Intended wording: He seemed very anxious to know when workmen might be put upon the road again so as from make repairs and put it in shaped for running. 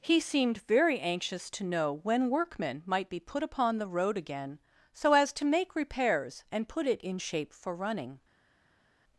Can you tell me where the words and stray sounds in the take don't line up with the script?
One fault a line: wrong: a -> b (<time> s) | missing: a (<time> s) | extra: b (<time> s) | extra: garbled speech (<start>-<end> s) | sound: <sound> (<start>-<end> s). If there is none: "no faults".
wrong: from -> to (5.3 s)
wrong: shaped -> shape (7.2 s)